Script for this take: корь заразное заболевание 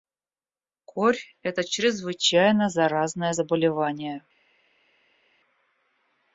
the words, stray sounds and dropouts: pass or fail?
fail